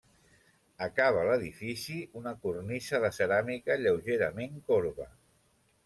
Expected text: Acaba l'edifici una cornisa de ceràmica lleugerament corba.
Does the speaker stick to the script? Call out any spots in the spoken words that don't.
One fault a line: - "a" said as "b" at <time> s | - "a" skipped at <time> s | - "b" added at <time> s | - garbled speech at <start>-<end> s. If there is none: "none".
none